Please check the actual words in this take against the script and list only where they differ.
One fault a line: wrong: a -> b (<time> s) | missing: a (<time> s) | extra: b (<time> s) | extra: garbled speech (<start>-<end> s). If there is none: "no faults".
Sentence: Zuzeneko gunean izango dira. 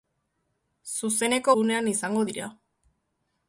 no faults